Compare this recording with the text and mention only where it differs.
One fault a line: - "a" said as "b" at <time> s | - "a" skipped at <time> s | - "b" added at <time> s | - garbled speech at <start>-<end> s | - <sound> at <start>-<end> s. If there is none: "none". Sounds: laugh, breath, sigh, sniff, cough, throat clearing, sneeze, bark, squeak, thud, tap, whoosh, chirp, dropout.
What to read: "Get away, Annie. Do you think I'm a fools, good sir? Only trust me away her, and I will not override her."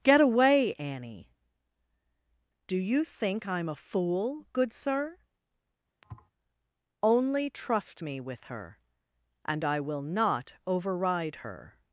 - "fools" said as "fool" at 3.8 s
- thud at 6.0-6.3 s
- "away" said as "with" at 8.2 s